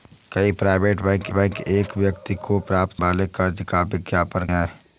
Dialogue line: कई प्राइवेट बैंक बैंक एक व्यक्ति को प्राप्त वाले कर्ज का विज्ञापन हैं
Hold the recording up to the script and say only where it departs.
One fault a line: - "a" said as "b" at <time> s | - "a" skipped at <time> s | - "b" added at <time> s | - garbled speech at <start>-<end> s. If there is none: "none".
none